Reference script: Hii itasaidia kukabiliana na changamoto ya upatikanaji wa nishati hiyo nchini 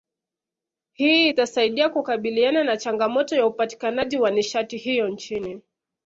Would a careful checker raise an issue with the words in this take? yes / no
no